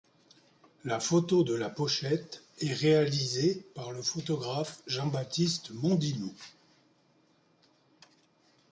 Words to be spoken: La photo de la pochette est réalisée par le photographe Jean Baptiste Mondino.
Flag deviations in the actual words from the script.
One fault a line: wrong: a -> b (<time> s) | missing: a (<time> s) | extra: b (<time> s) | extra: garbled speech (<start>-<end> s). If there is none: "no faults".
no faults